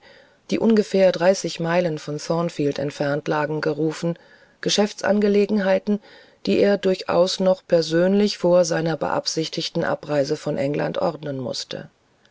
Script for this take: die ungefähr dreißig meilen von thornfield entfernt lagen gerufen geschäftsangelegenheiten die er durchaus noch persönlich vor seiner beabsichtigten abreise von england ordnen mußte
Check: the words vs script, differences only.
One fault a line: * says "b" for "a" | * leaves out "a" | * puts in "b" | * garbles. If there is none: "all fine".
all fine